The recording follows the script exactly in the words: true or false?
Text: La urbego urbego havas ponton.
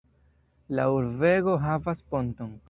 false